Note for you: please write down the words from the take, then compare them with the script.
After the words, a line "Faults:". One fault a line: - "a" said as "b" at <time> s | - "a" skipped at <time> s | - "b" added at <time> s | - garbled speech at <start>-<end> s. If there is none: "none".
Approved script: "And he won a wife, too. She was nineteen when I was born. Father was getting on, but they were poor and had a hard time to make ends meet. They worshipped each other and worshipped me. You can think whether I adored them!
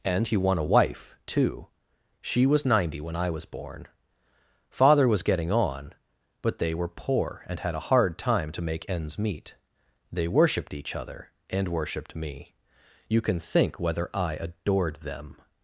"And he won a wife, too. She was ninety when I was born. Father was getting on, but they were poor and had a hard time to make ends meet. They worshipped each other and worshipped me. You can think whether I adored them!
Faults:
- "nineteen" said as "ninety" at 2.6 s